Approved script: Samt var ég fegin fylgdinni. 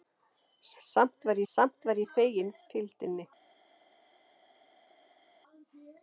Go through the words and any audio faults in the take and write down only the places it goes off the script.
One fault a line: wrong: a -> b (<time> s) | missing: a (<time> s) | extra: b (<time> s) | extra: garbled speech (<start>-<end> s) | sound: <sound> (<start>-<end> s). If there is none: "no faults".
extra: samt var (1.5 s)